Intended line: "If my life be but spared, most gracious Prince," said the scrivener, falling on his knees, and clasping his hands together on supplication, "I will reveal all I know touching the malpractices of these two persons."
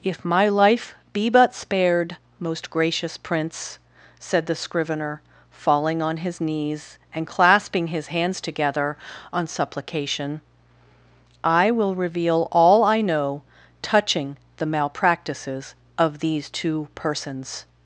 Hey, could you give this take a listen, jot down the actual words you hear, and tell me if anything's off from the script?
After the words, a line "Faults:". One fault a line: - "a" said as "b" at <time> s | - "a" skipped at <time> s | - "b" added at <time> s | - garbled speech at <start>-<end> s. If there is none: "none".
"If my life be but spared, most gracious Prince," said the scrivener, falling on his knees, and clasping his hands together on supplication, "I will reveal all I know touching the malpractices of these two persons."
Faults:
none